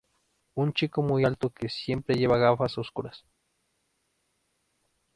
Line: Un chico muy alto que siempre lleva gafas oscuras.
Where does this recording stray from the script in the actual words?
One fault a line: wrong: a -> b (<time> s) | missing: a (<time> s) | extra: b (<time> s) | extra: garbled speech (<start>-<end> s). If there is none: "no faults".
no faults